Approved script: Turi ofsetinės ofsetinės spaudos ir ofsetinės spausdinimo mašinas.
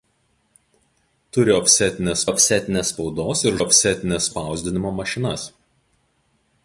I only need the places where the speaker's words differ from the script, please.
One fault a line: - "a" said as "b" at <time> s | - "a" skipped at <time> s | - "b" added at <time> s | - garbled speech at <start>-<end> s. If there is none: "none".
none